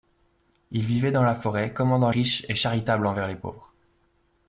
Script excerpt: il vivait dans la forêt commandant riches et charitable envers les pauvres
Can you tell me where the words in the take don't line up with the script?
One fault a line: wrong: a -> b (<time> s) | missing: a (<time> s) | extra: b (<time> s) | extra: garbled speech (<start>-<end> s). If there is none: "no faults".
no faults